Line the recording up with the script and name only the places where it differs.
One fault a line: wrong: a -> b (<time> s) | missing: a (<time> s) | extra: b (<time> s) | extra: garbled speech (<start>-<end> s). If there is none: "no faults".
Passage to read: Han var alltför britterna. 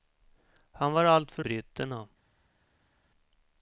no faults